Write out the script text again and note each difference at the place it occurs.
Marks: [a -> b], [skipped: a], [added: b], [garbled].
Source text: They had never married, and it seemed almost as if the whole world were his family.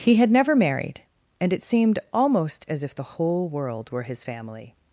[They -> He] had never married, and it seemed almost as if the whole world were his family.